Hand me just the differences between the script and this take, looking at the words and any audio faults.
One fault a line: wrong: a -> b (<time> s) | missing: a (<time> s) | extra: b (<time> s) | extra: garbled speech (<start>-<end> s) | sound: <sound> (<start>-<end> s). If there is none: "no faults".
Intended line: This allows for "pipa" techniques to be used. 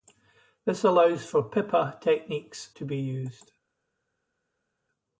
no faults